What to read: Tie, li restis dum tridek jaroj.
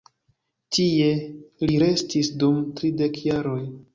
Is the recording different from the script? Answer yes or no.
no